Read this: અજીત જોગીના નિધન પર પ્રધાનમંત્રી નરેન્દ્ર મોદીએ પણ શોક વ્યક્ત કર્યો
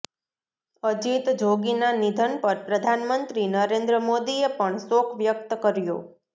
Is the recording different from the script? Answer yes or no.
no